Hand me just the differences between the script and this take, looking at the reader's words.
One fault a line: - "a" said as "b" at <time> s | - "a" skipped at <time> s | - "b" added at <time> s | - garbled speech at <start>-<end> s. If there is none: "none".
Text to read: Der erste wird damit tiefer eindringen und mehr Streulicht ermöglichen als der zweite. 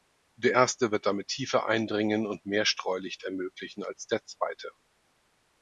none